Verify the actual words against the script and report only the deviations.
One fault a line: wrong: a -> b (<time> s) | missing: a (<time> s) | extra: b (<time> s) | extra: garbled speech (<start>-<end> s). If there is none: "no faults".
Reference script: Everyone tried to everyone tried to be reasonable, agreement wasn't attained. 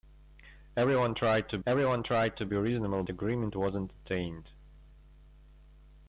no faults